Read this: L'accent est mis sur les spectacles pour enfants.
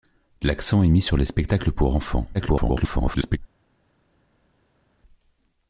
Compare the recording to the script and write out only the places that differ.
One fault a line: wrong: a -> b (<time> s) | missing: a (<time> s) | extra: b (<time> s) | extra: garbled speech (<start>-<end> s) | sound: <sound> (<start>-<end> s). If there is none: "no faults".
extra: garbled speech (2.3-3.4 s)